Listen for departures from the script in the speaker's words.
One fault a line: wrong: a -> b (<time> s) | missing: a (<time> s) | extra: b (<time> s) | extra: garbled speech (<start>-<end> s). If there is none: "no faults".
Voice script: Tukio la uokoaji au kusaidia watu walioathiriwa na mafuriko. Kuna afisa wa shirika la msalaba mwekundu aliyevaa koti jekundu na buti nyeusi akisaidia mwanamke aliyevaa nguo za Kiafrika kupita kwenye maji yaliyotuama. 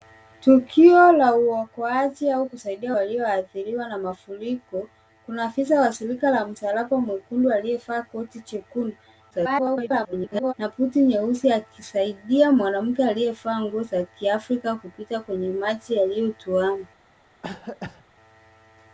missing: watu (3.0 s)
extra: garbled speech (9.3-10.5 s)